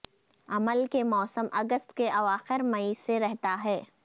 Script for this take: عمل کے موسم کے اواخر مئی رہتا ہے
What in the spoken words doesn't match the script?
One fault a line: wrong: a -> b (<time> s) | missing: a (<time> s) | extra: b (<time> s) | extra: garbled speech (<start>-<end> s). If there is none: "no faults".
extra: اگست (1.5 s)
extra: سے (3.1 s)